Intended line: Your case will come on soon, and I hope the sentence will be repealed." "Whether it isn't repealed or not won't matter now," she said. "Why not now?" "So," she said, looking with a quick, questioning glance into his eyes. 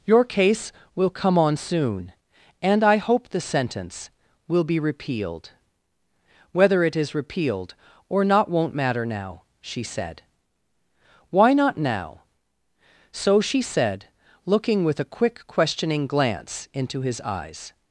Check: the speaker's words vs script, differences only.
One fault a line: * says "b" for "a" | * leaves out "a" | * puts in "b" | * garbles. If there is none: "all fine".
* says "is" for "isn't"